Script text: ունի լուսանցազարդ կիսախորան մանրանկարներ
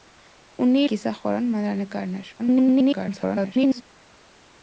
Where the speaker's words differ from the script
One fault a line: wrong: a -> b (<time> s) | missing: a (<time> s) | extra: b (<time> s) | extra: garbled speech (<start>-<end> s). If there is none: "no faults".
missing: լուսանցազարդ (0.8 s)
extra: garbled speech (2.4-3.8 s)